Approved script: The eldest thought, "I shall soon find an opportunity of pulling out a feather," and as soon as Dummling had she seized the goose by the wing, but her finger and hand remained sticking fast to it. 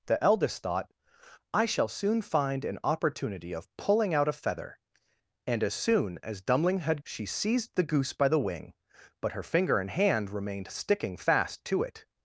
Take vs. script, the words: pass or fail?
pass